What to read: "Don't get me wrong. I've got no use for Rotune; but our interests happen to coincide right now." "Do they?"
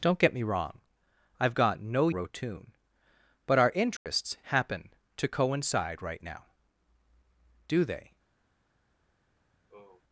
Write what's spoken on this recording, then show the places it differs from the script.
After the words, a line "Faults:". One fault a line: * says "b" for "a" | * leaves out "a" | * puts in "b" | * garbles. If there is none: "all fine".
"Don't get me wrong. I've got no Rotune; but our interests happen to coincide right now." "Do they?"
Faults:
* leaves out "use for"